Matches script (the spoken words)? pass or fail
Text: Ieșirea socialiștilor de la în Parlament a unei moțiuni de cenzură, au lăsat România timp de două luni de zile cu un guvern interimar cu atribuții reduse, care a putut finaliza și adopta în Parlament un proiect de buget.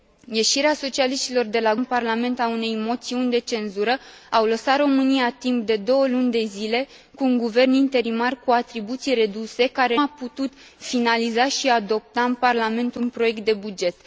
pass